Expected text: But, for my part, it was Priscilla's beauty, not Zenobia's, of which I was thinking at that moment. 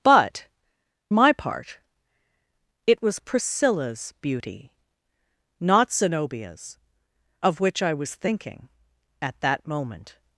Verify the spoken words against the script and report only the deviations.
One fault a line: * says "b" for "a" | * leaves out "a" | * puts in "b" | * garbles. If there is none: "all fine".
* leaves out "for"